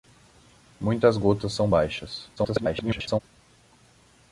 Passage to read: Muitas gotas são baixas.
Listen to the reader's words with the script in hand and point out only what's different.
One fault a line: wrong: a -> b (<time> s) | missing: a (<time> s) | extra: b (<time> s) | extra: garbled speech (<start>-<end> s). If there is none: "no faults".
extra: garbled speech (2.4-3.2 s)